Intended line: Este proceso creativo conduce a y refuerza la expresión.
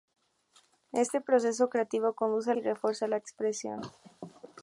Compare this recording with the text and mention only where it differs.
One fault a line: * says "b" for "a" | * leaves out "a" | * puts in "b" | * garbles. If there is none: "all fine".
all fine